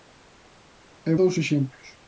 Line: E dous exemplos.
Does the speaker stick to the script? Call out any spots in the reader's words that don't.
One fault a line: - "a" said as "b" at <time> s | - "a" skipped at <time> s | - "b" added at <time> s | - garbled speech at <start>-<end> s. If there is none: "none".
none